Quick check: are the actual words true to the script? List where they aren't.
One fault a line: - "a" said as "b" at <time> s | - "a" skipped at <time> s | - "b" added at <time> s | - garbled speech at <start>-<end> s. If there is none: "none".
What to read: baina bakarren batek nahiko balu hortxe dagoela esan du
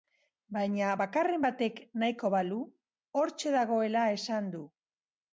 none